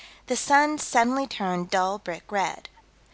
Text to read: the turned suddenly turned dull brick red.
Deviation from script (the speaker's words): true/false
true